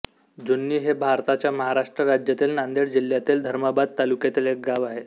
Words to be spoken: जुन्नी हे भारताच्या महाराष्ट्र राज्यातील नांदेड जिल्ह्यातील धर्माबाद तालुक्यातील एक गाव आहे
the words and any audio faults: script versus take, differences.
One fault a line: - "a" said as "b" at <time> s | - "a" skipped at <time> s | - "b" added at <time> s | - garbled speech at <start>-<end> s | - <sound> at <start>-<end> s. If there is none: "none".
none